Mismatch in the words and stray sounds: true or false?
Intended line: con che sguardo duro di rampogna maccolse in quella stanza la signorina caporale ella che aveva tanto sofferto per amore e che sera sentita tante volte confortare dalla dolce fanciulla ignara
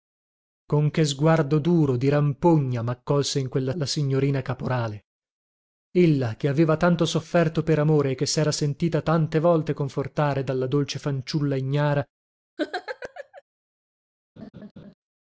true